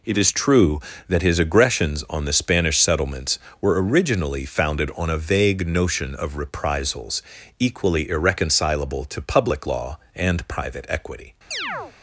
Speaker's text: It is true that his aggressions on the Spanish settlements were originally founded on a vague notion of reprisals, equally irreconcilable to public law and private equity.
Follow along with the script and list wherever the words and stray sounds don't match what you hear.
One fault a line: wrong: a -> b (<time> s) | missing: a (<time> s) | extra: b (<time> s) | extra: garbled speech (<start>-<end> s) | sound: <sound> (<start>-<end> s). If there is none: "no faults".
sound: chirp (11.5-11.9 s)